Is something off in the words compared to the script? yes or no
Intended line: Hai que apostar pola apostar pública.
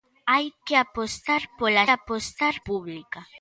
no